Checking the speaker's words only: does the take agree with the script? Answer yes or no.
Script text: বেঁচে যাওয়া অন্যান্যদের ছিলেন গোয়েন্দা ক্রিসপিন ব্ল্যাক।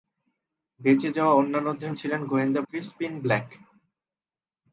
yes